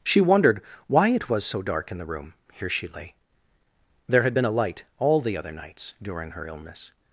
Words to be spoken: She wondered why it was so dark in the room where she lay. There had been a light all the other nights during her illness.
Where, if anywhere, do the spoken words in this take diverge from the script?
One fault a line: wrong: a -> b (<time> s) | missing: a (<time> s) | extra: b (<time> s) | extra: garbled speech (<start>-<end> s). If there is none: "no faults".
wrong: where -> here (2.5 s)